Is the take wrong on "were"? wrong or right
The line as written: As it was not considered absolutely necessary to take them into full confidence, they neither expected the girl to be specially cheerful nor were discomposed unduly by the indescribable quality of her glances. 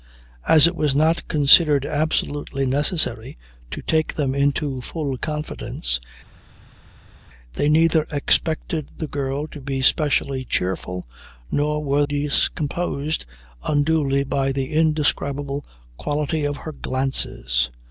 right